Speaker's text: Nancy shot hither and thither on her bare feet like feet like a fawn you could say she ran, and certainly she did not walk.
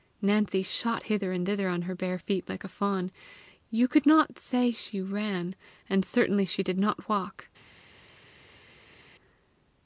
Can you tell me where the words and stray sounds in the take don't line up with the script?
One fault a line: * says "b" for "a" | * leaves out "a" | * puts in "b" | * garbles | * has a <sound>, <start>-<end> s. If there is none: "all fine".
* leaves out "feet like"
* puts in "not"